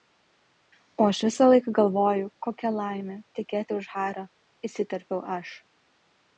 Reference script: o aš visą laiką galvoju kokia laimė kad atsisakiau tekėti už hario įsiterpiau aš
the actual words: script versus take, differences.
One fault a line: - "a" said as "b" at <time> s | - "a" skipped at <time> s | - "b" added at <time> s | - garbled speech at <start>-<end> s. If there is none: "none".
- "kad atsisakiau" skipped at 3.2 s